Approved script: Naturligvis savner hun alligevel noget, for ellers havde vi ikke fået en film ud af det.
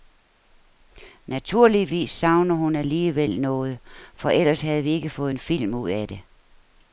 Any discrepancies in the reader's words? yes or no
no